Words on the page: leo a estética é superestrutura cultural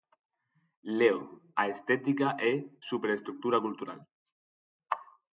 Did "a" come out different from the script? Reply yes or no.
no